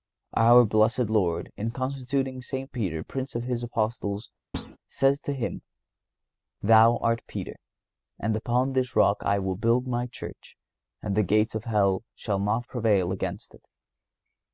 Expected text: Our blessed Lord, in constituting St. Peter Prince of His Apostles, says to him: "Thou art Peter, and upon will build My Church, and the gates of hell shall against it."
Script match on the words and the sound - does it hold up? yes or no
no